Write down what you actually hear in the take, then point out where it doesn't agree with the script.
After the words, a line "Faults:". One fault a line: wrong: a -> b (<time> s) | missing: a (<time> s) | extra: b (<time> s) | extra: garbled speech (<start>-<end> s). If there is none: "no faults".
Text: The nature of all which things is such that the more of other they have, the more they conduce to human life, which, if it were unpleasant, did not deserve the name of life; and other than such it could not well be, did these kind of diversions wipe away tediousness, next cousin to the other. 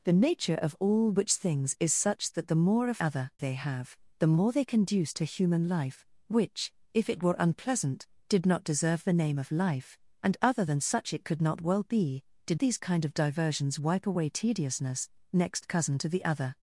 The nature of all which things is such that the more of other they have, the more they conduce to human life, which, if it were unpleasant, did not deserve the name of life; and other than such it could not well be, did these kind of diversions wipe away tediousness, next cousin to the other.
Faults:
no faults